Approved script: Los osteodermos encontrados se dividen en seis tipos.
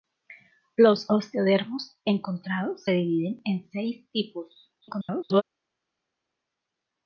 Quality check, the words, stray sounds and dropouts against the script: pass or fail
fail